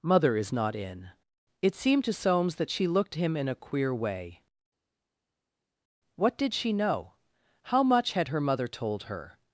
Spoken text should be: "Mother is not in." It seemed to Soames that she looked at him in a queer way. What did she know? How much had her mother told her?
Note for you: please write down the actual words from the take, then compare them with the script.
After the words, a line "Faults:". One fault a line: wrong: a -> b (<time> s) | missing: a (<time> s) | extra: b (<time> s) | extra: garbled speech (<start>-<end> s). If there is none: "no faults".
"Mother is not in." It seemed to Soames that she looked him in a queer way. What did she know? How much had her mother told her?
Faults:
missing: at (3.1 s)